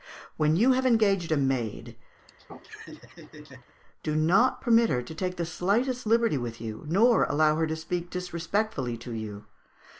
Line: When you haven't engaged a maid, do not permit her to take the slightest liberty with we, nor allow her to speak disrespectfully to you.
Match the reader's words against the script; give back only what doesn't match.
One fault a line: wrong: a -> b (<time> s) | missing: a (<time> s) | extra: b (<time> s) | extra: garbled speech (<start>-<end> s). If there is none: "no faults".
wrong: haven't -> have (0.7 s)
wrong: we -> you (6.6 s)